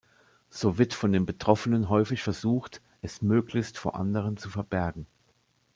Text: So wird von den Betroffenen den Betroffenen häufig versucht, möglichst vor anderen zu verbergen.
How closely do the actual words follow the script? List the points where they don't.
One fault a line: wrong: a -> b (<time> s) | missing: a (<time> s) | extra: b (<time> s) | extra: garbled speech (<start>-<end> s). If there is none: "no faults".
missing: den Betroffenen (1.9 s)
extra: es (3.0 s)